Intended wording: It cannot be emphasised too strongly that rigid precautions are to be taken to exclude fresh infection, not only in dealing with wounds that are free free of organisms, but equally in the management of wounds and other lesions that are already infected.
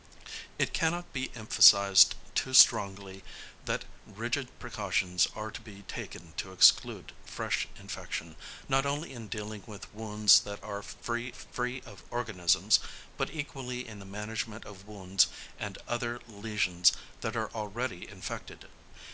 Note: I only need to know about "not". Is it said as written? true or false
true